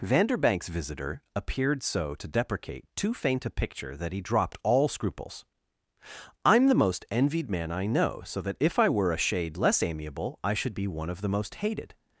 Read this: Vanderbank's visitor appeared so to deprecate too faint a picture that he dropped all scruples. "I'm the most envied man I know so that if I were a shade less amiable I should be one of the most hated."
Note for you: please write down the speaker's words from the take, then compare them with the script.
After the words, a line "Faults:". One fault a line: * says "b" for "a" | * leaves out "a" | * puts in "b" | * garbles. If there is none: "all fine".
Vanderbank's visitor appeared so to deprecate too faint a picture that he dropped all scruples. "I'm the most envied man I know so that if I were a shade less amiable I should be one of the most hated."
Faults:
all fine